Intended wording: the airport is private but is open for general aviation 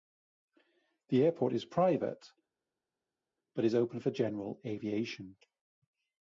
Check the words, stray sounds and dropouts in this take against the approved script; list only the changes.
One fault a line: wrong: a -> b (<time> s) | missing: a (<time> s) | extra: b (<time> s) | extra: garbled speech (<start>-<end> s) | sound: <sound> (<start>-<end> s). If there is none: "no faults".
no faults